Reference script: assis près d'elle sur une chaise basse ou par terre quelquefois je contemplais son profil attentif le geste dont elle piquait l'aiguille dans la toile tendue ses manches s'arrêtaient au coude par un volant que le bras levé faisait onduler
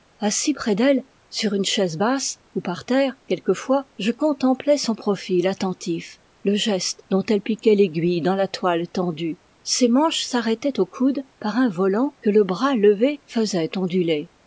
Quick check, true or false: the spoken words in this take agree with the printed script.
true